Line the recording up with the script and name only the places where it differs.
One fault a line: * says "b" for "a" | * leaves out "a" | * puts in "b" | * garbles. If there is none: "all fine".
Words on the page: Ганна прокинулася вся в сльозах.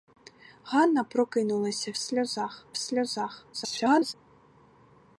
* says "сльозах" for "вся"
* garbles